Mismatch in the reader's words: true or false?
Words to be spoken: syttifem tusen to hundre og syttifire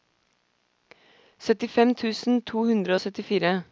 false